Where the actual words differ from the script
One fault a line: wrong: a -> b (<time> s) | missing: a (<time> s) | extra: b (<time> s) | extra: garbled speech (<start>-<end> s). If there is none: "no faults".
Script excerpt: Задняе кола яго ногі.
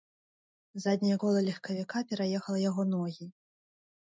extra: легкавіка пераехала (1.5 s)